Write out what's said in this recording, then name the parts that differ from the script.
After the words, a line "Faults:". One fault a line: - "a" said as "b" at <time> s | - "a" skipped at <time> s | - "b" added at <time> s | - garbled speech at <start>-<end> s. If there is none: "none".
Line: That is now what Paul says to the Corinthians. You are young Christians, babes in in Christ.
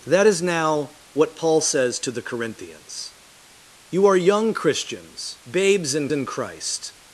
That is now what Paul says to the Corinthians. You are young Christians, babes in in Christ.
Faults:
none